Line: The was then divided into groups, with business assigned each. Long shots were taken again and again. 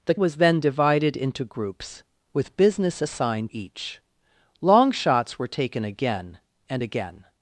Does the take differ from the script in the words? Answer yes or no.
no